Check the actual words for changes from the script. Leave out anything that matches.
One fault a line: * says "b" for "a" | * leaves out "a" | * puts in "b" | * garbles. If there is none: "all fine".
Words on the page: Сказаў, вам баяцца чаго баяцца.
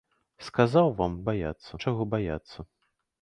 all fine